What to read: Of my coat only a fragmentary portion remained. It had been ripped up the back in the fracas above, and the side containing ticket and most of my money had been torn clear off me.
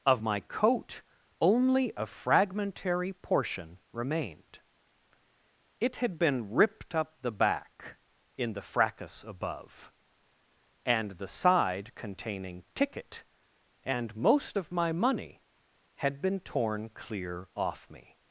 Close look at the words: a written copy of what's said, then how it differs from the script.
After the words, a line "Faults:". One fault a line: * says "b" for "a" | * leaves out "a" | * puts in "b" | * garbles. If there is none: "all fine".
Of my coat only a fragmentary portion remained. It had been ripped up the back in the fracas above, and the side containing ticket and most of my money had been torn clear off me.
Faults:
all fine